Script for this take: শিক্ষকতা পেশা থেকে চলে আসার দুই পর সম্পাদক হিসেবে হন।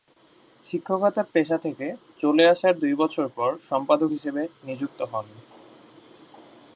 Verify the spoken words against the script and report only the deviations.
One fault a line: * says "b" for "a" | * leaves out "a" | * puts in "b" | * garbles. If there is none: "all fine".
* puts in "বছর"
* puts in "নিযুক্ত"